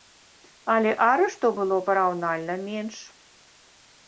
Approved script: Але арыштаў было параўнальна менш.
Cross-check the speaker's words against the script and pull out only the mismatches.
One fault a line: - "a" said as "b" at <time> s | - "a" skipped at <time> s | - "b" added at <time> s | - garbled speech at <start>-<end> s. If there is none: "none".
none